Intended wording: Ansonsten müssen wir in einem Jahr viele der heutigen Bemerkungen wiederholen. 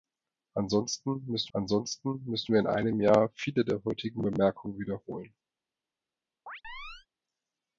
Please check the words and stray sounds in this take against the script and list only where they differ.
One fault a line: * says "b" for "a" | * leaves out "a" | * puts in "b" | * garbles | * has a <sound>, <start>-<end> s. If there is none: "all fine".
* puts in "ansonsten müssen"
* has a chirp, 6.5-7.1 s